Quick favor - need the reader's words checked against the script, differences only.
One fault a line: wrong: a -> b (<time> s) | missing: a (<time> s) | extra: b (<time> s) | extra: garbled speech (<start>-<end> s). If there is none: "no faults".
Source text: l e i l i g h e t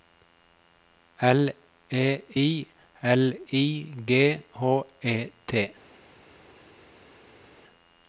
no faults